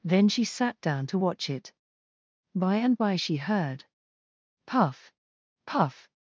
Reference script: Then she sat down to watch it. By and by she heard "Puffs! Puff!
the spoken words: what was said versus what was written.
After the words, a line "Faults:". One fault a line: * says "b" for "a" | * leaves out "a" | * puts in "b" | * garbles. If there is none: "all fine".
Then she sat down to watch it. By and by she heard "Puff! Puff!
Faults:
* says "Puff" for "Puffs"